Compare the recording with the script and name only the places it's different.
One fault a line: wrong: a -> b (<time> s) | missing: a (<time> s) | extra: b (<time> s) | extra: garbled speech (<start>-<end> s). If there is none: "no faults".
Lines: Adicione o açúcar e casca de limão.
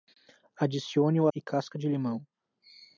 missing: açúcar (1.3 s)